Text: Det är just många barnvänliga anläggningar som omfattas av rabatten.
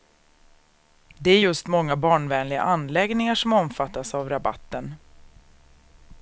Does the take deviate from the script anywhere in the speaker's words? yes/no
no